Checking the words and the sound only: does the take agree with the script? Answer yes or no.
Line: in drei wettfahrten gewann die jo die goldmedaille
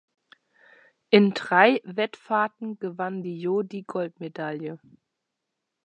yes